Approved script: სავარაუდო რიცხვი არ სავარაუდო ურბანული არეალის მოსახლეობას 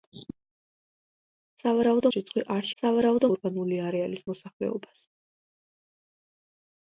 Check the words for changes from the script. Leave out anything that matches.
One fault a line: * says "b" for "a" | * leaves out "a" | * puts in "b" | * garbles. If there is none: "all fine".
all fine